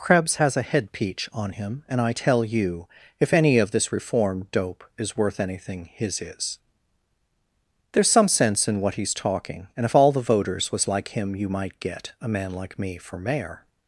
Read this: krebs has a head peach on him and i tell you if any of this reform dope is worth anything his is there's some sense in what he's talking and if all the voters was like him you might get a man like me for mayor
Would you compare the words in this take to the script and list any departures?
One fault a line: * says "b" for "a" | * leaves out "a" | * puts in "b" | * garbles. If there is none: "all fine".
all fine